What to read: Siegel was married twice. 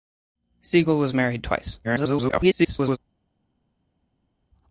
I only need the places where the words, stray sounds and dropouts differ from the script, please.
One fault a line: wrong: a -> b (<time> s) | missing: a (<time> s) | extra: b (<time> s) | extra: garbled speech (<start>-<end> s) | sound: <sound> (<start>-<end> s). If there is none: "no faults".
extra: garbled speech (1.8-3.0 s)